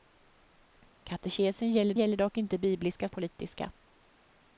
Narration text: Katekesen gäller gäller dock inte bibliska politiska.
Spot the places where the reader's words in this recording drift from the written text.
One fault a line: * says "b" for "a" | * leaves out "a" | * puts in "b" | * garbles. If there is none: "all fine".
all fine